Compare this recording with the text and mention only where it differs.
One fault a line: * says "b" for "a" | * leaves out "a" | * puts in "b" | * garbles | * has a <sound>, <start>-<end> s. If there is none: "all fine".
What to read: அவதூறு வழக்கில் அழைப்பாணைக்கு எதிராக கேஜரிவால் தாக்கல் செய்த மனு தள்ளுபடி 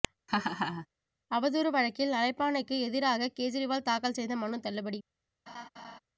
* has a laugh, 0.3-0.9 s
* has a laugh, 5.5-6.0 s